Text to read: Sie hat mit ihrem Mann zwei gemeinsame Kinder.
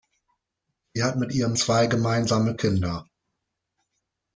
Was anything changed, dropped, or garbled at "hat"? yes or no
no